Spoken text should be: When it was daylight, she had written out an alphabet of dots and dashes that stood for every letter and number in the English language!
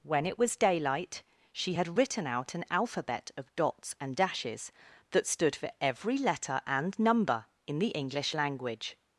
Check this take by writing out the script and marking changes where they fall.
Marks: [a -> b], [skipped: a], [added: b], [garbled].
When it was daylight, she had written out an alphabet of dots and dashes that stood for every letter and number in the English language!